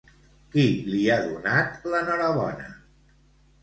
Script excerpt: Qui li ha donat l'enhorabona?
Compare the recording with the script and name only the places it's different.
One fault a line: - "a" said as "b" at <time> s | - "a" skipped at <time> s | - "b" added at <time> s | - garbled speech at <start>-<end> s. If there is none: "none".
none